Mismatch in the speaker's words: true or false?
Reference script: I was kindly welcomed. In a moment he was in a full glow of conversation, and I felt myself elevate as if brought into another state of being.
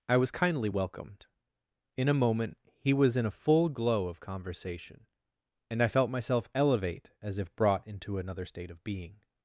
false